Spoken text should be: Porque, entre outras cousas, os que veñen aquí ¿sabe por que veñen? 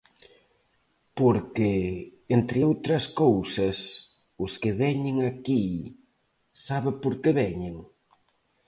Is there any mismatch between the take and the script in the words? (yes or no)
no